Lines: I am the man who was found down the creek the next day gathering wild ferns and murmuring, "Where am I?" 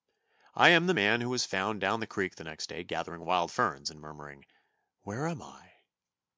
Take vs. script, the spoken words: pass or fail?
pass